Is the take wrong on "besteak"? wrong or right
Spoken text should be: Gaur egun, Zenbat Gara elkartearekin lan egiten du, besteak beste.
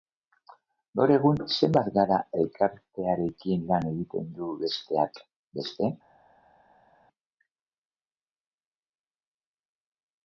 right